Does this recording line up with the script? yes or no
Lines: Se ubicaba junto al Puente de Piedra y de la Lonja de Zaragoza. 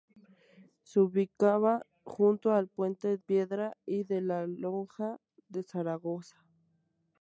no